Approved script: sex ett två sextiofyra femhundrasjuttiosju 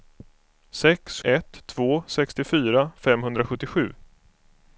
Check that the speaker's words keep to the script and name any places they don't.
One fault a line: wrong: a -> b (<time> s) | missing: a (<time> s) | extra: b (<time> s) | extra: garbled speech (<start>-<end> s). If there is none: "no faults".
no faults